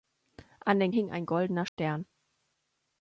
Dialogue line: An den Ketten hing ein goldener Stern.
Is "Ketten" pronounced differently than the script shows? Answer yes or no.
yes